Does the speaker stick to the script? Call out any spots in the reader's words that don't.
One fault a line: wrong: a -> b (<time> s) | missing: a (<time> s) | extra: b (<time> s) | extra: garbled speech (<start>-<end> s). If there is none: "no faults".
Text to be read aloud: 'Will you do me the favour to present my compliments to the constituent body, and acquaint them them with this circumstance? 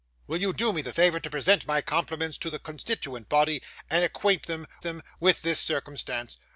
no faults